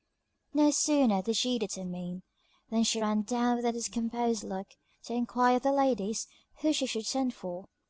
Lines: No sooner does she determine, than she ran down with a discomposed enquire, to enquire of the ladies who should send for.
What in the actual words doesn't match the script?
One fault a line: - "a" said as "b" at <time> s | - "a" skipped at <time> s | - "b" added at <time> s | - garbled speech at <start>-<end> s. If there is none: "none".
- "does" said as "did" at 1.2 s
- "enquire" said as "look" at 4.4 s
- "she" added at 6.7 s